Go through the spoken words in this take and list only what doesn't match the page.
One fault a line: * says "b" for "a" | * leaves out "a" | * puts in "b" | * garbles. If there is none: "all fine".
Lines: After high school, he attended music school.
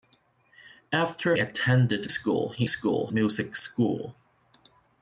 * says "attended" for "high"
* says "school" for "attended"